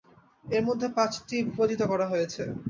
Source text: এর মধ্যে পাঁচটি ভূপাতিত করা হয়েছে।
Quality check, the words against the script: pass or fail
pass